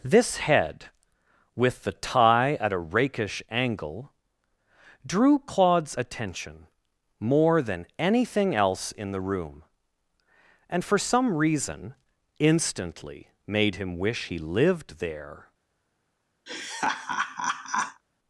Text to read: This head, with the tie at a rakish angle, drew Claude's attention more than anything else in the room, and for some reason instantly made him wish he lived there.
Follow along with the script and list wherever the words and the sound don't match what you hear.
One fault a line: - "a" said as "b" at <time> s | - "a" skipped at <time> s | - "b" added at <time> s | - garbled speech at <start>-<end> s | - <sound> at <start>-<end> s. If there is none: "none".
- laugh at 16.5-18.0 s